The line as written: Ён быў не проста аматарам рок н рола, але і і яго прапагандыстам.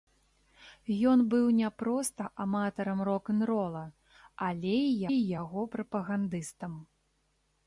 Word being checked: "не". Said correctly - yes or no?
yes